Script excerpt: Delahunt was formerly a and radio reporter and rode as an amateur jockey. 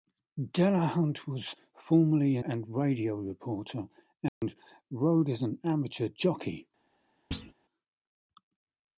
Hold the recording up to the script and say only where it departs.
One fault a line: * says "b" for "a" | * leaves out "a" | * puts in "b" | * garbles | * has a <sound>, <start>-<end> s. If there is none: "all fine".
* has a dropout, 4.3-4.4 s
* has a thud, 7.3-7.5 s